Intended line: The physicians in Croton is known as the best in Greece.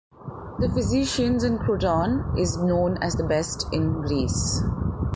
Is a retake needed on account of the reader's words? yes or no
no